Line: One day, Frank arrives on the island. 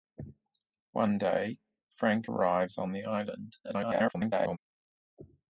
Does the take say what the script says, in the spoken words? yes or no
no